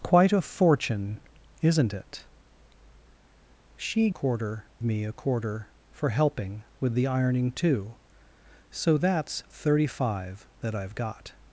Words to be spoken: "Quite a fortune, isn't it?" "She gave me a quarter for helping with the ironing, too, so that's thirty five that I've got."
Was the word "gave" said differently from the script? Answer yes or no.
yes